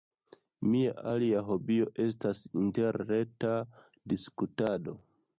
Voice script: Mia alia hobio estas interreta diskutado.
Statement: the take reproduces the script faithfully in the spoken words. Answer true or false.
true